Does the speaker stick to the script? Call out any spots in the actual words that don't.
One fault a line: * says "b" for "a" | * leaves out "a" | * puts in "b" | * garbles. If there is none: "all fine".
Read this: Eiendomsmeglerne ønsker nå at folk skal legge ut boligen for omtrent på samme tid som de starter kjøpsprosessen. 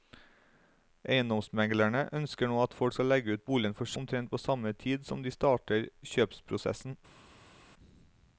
all fine